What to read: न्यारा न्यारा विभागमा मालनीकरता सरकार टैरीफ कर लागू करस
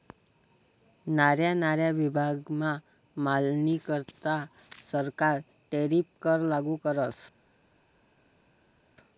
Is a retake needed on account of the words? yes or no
no